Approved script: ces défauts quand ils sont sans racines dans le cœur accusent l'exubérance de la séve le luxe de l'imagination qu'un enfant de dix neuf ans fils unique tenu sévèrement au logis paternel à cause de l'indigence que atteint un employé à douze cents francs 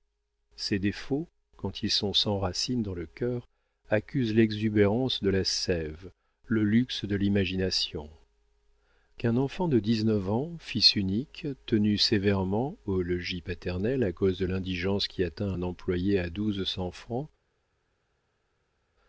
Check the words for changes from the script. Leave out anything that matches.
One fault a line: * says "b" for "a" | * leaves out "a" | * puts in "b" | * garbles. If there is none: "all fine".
* says "qui" for "que"